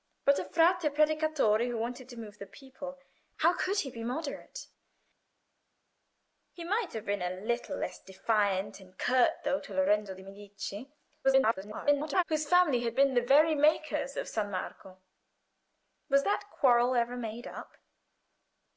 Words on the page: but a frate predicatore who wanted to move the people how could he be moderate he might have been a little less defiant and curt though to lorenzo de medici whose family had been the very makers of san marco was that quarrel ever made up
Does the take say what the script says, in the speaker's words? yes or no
no